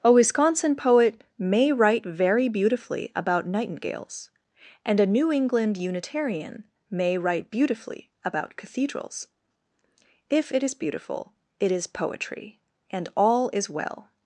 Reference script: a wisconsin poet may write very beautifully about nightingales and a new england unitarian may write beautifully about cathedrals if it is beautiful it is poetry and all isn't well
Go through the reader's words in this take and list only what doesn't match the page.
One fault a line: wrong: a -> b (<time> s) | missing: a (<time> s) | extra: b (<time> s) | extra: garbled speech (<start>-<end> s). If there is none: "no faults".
wrong: isn't -> is (13.5 s)